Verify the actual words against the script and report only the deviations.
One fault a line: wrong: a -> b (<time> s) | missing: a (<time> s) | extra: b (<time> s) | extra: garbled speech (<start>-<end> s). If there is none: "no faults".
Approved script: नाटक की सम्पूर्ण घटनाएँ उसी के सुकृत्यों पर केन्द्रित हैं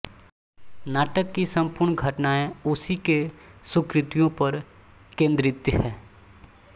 no faults